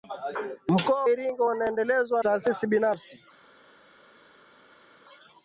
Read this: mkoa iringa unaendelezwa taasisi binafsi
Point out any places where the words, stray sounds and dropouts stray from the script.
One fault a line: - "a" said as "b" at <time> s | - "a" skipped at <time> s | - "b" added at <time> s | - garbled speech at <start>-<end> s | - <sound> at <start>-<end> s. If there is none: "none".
none